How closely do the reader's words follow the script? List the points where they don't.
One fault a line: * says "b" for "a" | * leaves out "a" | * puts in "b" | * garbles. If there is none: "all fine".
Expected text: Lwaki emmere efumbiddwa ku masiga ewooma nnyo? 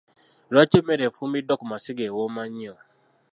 all fine